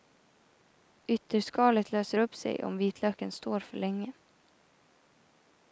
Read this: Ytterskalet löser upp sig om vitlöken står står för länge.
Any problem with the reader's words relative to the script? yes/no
yes